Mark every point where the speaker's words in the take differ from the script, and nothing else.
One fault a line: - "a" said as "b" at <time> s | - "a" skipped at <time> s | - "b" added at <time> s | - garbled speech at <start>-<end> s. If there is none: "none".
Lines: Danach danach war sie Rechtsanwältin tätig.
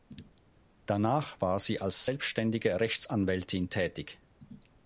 - "danach" skipped at 1.4 s
- "als selbständige" added at 1.8 s